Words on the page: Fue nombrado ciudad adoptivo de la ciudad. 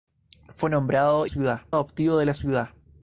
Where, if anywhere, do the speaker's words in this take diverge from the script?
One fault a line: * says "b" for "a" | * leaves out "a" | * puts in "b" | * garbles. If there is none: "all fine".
all fine